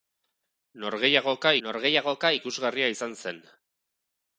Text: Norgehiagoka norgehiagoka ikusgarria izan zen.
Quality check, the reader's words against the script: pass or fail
pass